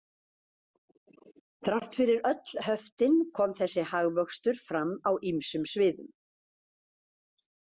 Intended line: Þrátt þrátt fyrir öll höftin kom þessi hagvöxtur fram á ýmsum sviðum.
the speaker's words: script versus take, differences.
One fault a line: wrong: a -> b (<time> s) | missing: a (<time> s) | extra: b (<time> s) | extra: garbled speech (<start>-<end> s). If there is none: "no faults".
missing: þrátt (2.0 s)